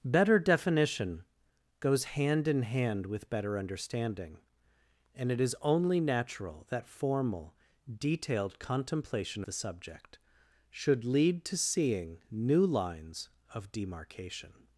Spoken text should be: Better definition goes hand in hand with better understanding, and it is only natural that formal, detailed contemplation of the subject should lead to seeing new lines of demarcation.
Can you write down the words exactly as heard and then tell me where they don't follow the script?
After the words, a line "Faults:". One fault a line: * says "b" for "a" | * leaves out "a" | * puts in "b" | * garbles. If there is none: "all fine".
Better definition goes hand in hand with better understanding, and it is only natural that formal, detailed contemplation the subject should lead to seeing new lines of demarcation.
Faults:
* leaves out "of"